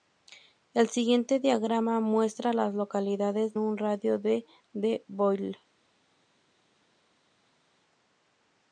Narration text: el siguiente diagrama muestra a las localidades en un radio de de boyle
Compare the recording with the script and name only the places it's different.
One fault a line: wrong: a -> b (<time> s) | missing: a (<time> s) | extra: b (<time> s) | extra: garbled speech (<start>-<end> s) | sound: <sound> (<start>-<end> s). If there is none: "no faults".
missing: en (3.5 s)